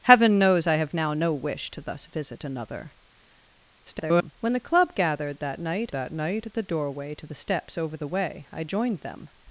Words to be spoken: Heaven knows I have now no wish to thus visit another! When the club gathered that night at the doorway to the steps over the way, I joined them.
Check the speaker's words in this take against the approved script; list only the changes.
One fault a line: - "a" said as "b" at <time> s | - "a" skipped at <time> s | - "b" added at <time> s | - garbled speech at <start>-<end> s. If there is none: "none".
- garbled speech at 3.8-4.3 s
- "that night" added at 5.9 s